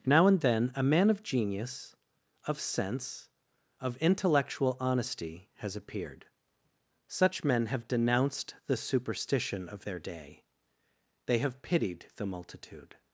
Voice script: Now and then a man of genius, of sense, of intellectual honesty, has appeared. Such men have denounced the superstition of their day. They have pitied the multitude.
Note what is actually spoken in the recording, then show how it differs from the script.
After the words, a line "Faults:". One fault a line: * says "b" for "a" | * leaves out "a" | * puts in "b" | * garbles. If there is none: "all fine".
Now and then a man of genius, of sense, of intellectual honesty, has appeared. Such men have denounced the superstition of their day. They have pitied the multitude.
Faults:
all fine